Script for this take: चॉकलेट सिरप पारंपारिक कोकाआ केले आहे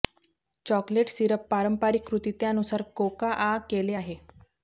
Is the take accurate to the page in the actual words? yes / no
no